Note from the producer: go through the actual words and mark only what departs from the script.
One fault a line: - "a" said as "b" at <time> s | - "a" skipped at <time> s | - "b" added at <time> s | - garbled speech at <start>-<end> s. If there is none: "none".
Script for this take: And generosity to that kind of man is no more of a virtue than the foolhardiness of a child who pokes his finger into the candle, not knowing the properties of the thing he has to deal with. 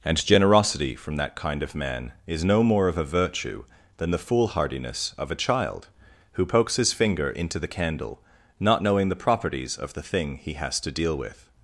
- "to" said as "from" at 0.9 s